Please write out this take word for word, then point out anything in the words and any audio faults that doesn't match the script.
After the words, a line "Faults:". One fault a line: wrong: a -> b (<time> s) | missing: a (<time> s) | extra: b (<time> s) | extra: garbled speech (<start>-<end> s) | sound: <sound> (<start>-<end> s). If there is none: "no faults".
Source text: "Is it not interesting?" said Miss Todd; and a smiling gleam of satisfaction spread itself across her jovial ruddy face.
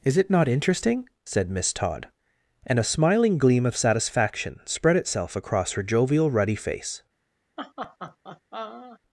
"Is it not interesting?" said Miss Todd; and a smiling gleam of satisfaction spread itself across her jovial ruddy face.
Faults:
sound: laugh (7.6-9.0 s)